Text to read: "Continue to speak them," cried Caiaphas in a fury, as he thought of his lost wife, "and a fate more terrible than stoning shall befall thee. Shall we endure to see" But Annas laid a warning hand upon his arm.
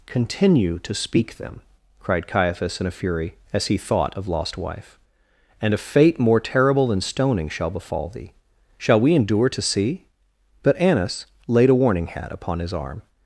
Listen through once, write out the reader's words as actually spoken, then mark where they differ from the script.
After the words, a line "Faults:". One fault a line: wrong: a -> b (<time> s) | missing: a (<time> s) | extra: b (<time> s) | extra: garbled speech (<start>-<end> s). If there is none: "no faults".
"Continue to speak them," cried Caiaphas in a fury, as he thought of lost wife, "and a fate more terrible than stoning shall befall thee. Shall we endure to see" But Annas laid a warning hat upon his arm.
Faults:
missing: his (4.3 s)
wrong: hand -> hat (12.1 s)